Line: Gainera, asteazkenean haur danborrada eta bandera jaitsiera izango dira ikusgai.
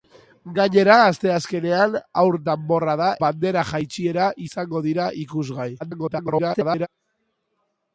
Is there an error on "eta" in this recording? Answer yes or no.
yes